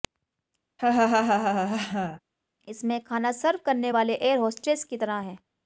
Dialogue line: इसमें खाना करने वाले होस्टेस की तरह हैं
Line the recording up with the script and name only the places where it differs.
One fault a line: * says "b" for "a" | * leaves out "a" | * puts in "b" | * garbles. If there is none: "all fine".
* puts in "सर्व"
* puts in "एयर"